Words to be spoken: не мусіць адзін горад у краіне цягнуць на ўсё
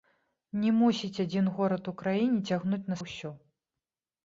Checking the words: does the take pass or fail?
pass